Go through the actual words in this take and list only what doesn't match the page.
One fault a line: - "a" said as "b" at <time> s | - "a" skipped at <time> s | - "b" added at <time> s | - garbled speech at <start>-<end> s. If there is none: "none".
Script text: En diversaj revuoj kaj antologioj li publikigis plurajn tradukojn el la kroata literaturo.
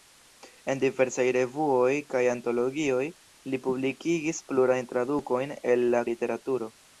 - "kroata" skipped at 6.0 s